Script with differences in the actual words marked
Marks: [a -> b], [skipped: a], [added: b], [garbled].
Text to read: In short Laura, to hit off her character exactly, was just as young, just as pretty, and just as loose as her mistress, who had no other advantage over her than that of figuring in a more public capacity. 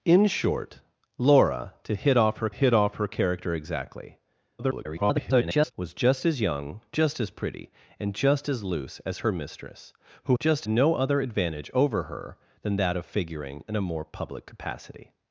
In short Laura, to hit off her [added: hit off her] character exactly, [garbled] was just as young, just as pretty, and just as loose as her mistress, who [had -> just] no other advantage over her than that of figuring in a more public capacity.